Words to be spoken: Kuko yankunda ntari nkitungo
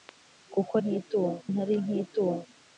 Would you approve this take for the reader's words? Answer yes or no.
no